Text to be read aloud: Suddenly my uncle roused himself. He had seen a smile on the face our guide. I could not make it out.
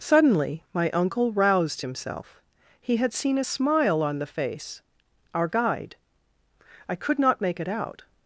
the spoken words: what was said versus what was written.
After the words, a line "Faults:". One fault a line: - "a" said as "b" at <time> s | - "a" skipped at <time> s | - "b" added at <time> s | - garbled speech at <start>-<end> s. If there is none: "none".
Suddenly my uncle roused himself. He had seen a smile on the face our guide. I could not make it out.
Faults:
none